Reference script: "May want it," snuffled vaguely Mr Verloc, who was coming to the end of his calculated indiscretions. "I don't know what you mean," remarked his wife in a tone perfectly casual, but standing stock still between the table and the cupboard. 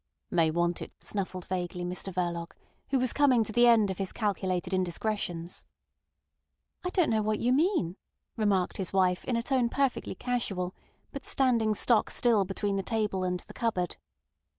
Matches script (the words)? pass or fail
pass